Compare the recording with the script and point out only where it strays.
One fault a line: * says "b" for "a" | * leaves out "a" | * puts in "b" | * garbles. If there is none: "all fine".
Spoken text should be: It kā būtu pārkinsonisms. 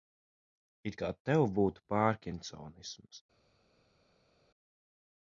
* puts in "tev"